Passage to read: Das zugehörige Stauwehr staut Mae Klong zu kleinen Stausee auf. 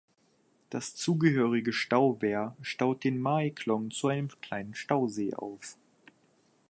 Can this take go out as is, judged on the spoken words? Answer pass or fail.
fail